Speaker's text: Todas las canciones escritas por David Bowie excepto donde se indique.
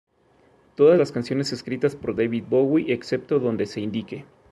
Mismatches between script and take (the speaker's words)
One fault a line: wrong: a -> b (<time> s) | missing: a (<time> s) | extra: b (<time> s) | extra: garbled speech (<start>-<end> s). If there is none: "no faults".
no faults